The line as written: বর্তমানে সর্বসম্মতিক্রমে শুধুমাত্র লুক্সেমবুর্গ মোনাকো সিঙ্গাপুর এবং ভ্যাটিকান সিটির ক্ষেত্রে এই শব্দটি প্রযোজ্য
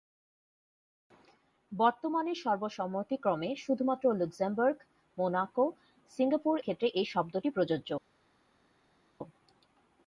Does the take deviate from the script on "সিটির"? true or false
true